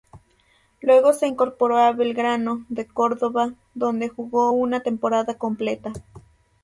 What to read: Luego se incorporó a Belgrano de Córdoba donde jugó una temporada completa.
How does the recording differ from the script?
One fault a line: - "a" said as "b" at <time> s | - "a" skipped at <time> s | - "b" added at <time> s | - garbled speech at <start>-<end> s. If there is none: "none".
none